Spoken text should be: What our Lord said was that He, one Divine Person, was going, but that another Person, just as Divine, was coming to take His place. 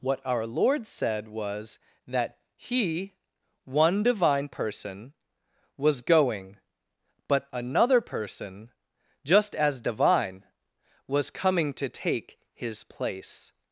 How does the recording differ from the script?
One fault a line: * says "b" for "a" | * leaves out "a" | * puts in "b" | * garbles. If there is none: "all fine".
* leaves out "that"